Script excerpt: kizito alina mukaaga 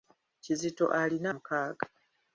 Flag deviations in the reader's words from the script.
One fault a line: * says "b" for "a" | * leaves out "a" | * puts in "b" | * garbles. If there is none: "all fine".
all fine